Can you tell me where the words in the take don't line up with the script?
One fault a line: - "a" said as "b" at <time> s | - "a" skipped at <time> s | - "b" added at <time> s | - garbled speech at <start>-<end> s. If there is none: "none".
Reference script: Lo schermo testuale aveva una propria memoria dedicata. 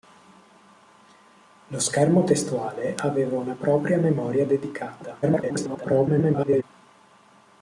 - garbled speech at 5.2-6.6 s